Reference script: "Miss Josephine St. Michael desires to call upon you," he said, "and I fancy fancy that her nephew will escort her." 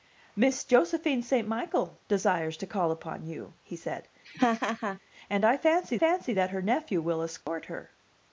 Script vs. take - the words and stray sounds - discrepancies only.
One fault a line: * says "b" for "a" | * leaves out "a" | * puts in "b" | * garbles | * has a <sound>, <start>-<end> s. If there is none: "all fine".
* has a laugh, 4.2-5.0 s
* has a dropout, 7.4-7.5 s